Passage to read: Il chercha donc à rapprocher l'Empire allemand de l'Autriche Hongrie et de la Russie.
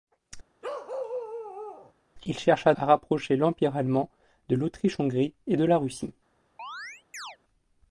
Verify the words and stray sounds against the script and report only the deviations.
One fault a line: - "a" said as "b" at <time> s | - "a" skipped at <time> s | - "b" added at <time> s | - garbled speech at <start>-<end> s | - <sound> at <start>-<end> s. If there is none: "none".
- bark at 0.6-1.9 s
- "donc" skipped at 2.7 s
- chirp at 6.6-7.4 s